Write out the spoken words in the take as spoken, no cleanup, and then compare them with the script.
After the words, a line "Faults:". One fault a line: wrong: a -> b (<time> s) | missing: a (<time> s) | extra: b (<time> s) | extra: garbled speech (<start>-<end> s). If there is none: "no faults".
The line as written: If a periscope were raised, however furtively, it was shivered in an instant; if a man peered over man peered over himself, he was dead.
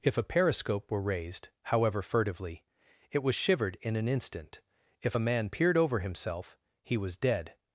If a periscope were raised, however furtively, it was shivered in an instant; if a man peered over himself, he was dead.
Faults:
missing: man peered over (6.0 s)